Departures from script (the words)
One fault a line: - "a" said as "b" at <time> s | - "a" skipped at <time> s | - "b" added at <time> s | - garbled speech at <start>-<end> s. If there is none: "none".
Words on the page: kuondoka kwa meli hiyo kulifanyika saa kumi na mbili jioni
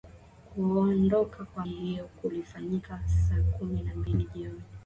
- "meli" skipped at 1.6 s